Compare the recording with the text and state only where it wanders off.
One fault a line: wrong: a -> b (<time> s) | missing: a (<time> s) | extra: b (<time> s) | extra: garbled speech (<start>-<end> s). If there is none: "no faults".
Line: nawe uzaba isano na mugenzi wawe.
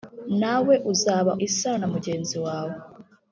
no faults